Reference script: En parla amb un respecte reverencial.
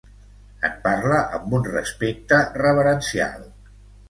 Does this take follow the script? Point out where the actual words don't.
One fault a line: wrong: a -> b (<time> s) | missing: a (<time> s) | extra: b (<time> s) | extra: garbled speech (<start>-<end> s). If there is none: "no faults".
no faults